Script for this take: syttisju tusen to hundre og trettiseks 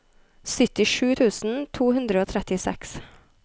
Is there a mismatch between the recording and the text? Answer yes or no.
no